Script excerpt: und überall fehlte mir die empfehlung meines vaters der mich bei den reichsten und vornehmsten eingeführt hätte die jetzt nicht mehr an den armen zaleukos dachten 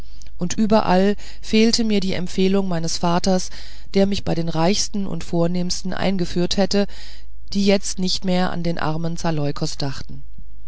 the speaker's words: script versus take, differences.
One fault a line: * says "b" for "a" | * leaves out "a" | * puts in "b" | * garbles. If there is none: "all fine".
all fine